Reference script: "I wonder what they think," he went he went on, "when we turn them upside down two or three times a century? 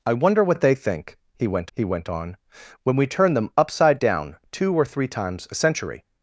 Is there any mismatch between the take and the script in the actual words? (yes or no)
no